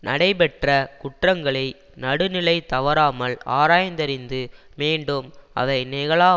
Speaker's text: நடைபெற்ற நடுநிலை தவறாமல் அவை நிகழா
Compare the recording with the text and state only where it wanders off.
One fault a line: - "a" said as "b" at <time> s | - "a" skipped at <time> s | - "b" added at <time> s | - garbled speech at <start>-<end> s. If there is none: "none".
- "குற்றங்களை" added at 1.0 s
- "ஆராய்ந்தறிந்து மீண்டும்" added at 3.5 s